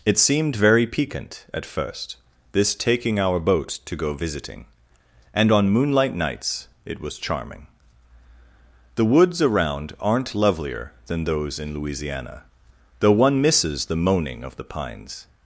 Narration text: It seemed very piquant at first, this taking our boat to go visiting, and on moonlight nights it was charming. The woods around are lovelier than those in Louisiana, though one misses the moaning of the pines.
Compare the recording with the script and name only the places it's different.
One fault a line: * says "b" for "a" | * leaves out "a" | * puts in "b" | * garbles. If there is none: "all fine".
* says "aren't" for "are"